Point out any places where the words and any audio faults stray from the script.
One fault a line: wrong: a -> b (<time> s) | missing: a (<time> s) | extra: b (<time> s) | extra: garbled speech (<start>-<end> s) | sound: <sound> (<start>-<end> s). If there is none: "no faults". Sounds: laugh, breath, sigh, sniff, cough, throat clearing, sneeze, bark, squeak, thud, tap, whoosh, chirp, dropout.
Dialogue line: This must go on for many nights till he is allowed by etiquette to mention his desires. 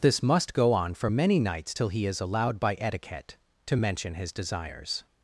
no faults